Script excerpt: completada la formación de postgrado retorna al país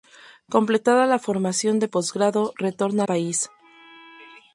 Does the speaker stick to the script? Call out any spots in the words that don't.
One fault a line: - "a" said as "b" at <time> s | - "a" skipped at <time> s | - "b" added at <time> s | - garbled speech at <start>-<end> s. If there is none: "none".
- "al" skipped at 3.0 s